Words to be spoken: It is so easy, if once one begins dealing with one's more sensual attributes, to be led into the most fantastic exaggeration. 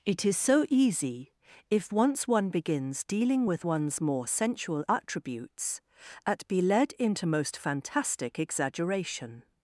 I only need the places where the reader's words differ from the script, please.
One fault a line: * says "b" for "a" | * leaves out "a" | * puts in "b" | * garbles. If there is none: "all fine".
* says "at" for "to"
* leaves out "the"